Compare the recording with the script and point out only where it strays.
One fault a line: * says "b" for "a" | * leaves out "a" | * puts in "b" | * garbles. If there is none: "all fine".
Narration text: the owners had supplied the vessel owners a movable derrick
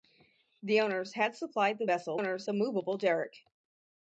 all fine